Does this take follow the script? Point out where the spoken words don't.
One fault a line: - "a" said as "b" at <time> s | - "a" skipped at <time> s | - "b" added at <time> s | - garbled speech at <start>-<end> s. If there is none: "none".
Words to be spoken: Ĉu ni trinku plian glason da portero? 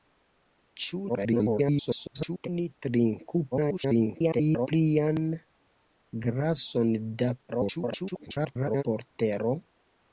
- garbled speech at 1.1-2.5 s
- garbled speech at 3.5-4.7 s
- garbled speech at 7.5-8.8 s